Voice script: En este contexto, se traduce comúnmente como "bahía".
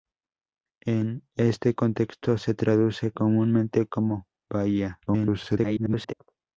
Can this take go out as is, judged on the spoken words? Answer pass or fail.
fail